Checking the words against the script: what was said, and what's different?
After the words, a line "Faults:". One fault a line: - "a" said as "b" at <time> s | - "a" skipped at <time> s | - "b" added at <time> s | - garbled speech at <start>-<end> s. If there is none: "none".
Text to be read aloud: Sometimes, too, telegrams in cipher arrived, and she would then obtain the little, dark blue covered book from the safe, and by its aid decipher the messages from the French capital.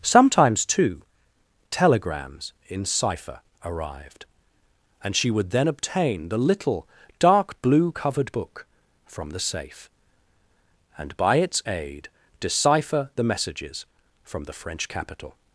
Sometimes, too, telegrams in cipher arrived, and she would then obtain the little, dark blue covered book from the safe, and by its aid decipher the messages from the French capital.
Faults:
none